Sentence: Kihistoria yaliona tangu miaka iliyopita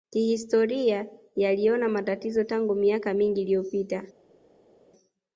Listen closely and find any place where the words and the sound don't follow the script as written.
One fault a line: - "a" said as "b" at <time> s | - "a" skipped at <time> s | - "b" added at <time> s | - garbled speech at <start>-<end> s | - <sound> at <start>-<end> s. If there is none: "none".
- "matatizo" added at 1.9 s
- "mingi" added at 3.1 s